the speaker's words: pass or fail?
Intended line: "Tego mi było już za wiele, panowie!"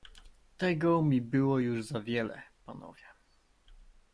pass